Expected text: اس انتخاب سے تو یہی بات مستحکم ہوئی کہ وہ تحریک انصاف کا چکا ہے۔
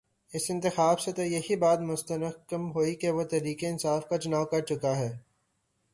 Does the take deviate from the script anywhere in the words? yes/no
yes